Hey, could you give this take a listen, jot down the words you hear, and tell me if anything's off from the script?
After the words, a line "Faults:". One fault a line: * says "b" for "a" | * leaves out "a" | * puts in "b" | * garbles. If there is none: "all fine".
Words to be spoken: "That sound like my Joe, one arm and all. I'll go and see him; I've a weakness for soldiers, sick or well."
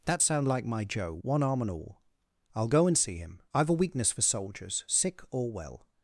"That sound like my Joe, one arm and all. I'll go and see him; I've a weakness for soldiers, sick or well."
Faults:
all fine